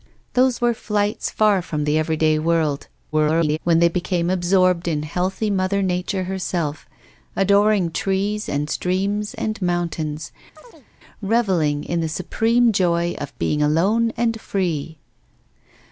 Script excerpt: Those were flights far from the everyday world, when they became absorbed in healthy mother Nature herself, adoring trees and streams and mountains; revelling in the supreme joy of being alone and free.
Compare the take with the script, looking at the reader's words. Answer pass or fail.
fail